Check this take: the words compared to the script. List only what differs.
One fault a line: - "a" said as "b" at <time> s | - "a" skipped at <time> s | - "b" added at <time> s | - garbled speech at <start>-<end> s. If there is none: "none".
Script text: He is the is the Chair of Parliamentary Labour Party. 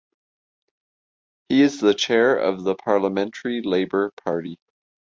- "is the" skipped at 1.9 s
- "the" added at 2.6 s